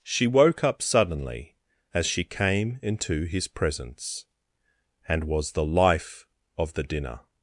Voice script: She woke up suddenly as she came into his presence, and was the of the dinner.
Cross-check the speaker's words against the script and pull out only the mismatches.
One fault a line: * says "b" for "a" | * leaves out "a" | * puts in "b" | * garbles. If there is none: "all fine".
* puts in "life"